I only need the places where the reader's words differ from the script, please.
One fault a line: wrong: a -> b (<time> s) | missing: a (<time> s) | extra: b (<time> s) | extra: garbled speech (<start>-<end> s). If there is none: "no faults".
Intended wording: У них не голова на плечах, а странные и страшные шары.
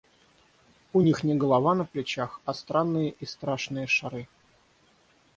no faults